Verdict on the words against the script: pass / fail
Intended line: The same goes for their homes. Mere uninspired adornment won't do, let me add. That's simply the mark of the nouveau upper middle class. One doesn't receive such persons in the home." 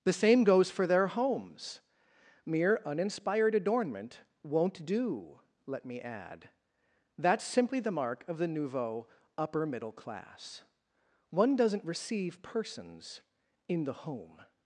fail